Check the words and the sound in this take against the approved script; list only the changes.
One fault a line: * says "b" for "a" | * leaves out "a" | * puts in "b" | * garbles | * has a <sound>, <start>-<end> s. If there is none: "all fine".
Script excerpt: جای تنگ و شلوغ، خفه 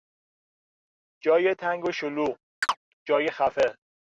* has a chirp, 2.6-2.8 s
* puts in "جای"